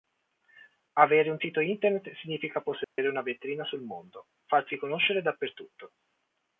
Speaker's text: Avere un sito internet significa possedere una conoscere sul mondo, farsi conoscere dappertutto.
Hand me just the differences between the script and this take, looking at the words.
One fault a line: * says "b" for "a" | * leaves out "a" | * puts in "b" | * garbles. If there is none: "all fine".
* says "vetrina" for "conoscere"